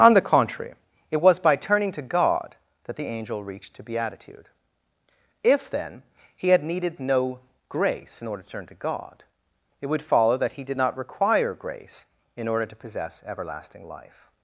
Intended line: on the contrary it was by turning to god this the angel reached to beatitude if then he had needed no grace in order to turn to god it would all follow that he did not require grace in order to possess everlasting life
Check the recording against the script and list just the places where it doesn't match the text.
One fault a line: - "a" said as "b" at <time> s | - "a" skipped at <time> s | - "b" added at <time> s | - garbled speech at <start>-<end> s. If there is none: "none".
- "this" said as "that" at 2.9 s
- "all" skipped at 10.0 s